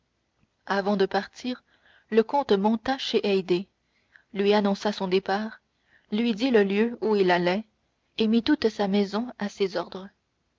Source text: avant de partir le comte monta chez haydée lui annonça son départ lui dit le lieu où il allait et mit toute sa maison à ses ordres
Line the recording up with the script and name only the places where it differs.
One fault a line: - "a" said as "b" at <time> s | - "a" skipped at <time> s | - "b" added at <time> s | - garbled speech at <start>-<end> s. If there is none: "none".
none